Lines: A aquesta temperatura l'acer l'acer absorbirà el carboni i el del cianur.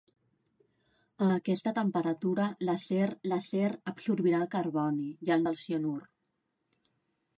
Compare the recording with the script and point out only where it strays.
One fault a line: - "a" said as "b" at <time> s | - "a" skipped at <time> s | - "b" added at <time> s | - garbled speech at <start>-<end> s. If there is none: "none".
none